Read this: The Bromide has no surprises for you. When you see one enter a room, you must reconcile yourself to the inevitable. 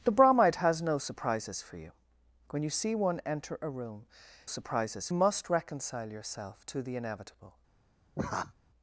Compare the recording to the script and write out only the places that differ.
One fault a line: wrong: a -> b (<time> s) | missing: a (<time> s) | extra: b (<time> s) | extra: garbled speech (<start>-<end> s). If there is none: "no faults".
wrong: you -> surprises (4.4 s)